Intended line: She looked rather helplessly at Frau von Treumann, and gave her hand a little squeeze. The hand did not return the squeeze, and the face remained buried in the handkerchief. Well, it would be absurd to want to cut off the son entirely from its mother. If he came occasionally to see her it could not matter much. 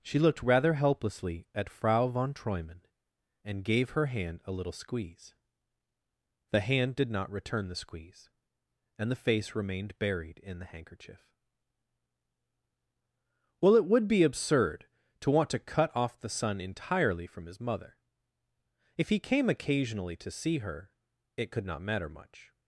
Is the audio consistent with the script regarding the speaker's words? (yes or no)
no